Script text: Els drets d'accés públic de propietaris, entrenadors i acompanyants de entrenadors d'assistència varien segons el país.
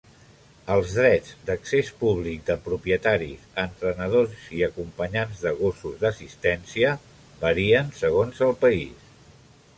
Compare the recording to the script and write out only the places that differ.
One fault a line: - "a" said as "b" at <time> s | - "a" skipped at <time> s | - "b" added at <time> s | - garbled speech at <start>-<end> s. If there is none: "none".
- "entrenadors" said as "gossos" at 5.6 s